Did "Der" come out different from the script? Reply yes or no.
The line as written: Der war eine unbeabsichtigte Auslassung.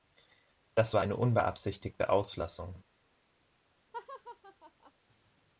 yes